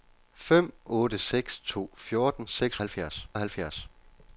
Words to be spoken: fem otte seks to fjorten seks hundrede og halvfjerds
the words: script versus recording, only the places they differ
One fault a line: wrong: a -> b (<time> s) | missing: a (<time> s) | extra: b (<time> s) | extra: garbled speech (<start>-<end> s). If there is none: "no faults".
wrong: hundrede -> halvfjerds (2.8 s)